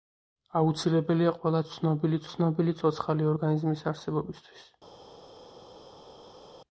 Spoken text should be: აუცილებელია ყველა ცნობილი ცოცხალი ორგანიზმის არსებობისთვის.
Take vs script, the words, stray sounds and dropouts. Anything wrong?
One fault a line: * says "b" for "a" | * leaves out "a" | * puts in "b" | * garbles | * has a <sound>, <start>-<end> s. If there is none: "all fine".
* puts in "ცნობილი"